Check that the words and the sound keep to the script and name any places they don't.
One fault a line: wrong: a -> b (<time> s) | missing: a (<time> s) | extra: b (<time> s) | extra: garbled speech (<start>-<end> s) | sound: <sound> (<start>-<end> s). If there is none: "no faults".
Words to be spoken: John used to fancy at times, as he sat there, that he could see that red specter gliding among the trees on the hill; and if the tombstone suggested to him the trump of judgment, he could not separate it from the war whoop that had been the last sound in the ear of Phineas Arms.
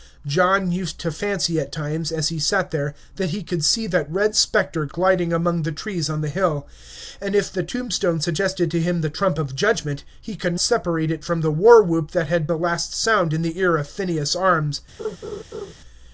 missing: not (10.6 s)
missing: been (12.5 s)
sound: laugh (15.0-15.7 s)